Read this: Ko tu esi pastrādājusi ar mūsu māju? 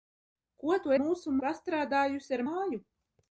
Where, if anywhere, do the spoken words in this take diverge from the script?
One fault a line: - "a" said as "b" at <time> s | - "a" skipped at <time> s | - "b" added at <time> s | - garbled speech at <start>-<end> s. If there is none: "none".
- "esi" said as "mūsu" at 1.0 s
- "mūsu" skipped at 2.4 s